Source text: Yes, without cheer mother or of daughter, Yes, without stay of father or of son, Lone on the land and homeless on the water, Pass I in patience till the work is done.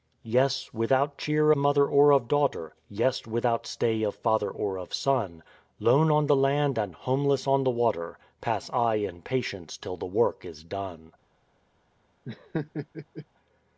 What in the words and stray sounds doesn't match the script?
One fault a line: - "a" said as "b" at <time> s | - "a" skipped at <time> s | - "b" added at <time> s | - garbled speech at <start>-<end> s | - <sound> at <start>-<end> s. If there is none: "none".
- laugh at 12.2-13.3 s